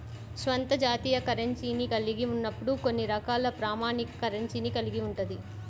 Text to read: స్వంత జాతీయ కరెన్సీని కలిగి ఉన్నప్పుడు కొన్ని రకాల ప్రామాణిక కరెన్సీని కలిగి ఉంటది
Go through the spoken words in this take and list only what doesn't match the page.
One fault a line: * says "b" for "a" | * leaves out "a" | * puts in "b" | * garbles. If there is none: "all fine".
all fine